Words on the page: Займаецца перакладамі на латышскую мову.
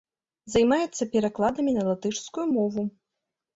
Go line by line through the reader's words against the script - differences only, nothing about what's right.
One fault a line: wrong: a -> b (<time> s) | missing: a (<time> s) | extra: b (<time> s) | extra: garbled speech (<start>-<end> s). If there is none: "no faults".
no faults